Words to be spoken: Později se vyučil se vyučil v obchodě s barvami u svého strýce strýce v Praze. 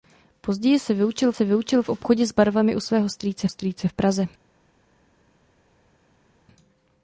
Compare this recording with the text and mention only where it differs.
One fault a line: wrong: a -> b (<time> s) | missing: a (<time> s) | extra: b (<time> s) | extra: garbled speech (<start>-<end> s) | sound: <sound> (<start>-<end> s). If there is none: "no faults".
no faults